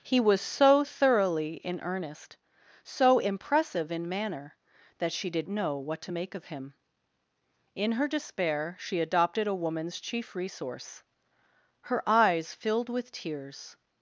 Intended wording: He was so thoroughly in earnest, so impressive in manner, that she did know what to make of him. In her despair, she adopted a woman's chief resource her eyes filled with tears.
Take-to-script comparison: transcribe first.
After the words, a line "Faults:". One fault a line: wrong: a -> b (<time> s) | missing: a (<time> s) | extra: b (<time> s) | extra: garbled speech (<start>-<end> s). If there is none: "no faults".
He was so thoroughly in earnest, so impressive in manner, that she did know what to make of him. In her despair, she adopted a woman's chief resource her eyes filled with tears.
Faults:
no faults